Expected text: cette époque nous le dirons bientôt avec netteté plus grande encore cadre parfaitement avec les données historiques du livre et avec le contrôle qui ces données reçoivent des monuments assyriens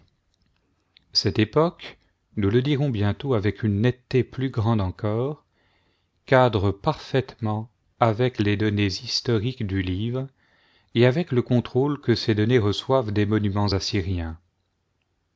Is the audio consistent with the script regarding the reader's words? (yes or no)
no